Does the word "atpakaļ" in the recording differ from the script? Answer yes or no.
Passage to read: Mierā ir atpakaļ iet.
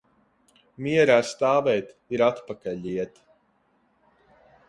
no